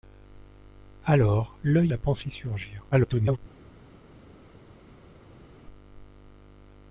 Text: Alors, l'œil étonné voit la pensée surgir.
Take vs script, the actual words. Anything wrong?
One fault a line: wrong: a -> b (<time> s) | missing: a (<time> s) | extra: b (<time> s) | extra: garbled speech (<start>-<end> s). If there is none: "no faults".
missing: étonné voit (1.9 s)
extra: garbled speech (2.9-3.4 s)